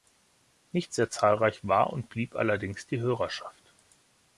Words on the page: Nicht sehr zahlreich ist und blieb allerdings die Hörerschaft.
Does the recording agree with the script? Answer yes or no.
no